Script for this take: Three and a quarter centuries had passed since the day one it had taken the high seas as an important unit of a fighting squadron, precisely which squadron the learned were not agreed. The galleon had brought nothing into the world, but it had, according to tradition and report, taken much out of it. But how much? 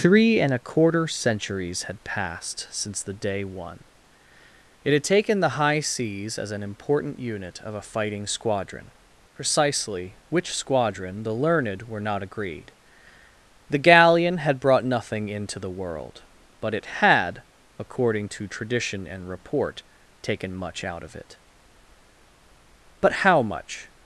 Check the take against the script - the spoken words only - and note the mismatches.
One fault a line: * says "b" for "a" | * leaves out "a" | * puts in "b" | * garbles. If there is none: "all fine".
all fine